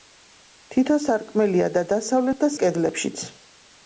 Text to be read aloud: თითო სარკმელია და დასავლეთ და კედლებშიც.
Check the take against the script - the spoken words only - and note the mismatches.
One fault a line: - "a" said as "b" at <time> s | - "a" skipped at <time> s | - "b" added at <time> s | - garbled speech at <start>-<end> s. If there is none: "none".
none